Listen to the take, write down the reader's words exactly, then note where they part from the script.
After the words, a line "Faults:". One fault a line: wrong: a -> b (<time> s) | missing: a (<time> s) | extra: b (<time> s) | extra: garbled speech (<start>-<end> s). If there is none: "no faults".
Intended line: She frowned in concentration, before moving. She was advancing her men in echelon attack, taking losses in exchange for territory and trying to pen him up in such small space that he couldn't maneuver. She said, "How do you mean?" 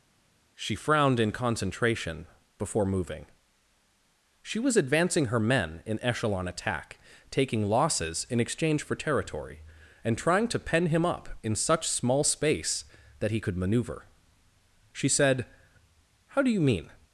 She frowned in concentration, before moving. She was advancing her men in echelon attack, taking losses in exchange for territory and trying to pen him up in such small space that he could maneuver. She said, "How do you mean?"
Faults:
wrong: couldn't -> could (13.4 s)